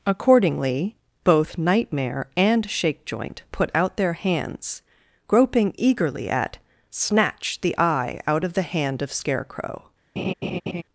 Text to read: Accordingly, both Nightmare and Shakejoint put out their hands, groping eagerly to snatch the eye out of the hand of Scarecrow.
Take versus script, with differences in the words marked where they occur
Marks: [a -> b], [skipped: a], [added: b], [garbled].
Accordingly, both Nightmare and Shakejoint put out their hands, groping eagerly [to -> at] snatch the eye out of the hand of Scarecrow.